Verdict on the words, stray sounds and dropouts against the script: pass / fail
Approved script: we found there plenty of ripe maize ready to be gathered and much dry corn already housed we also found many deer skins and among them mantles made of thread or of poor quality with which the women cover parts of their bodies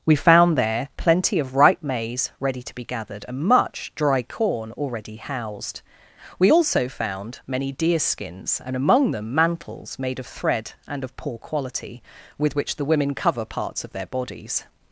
fail